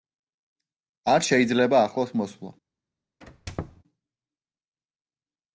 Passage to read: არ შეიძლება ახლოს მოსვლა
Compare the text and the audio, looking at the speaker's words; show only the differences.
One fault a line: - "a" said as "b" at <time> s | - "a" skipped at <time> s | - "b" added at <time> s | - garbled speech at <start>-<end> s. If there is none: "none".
none